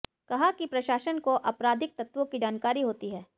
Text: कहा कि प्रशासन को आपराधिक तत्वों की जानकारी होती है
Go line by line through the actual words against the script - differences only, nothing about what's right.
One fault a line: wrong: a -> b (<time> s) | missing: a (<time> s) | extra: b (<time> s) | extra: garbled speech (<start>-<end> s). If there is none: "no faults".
no faults